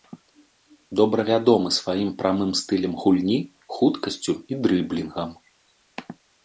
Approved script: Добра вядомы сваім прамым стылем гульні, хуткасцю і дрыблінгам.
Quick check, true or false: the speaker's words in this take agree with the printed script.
true